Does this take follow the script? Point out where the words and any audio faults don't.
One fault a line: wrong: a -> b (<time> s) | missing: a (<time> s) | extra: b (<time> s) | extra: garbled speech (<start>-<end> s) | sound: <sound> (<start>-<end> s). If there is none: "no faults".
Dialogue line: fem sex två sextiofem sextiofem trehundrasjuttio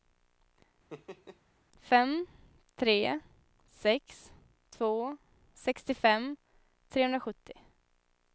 sound: laugh (0.9-1.4 s)
extra: tre (2.8 s)
missing: sextiofem (6.4 s)